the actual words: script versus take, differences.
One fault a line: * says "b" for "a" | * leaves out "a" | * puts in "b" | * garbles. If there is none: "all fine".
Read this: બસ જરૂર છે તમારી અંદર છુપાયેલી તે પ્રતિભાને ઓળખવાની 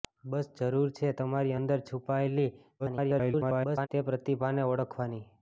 * garbles